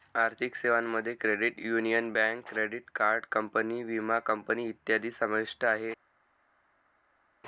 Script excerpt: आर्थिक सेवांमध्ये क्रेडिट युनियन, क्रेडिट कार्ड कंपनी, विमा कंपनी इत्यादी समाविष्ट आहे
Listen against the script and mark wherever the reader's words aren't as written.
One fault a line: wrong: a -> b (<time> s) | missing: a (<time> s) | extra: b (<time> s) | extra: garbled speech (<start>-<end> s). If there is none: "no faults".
extra: बँक (2.1 s)